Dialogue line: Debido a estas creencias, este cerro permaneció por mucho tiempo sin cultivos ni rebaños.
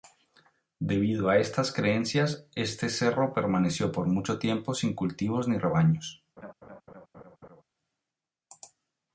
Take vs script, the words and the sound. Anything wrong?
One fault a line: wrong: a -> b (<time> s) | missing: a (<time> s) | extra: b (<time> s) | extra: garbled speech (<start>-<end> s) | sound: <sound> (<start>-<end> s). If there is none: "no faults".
sound: laugh (6.4-7.6 s)